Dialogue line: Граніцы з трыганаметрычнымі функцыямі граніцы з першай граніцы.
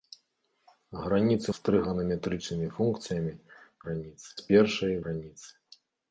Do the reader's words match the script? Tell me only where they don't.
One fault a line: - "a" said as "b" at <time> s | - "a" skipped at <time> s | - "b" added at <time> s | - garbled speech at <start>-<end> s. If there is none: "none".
none